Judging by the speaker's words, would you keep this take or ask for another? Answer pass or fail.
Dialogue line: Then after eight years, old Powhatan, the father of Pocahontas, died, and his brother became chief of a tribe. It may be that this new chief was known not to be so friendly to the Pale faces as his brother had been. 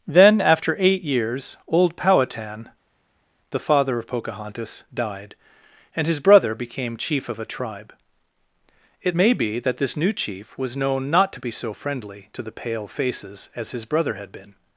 pass